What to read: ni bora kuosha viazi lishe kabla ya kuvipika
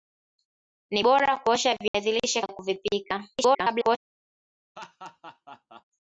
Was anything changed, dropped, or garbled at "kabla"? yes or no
yes